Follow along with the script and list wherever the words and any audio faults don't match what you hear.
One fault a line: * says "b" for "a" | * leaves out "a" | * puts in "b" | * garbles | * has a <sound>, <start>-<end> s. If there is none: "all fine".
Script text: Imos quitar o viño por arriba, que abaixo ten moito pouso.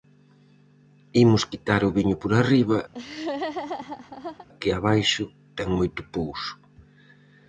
* has a laugh, 2.9-4.5 s